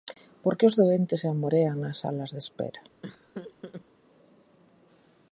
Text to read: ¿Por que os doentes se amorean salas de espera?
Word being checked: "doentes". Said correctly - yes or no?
yes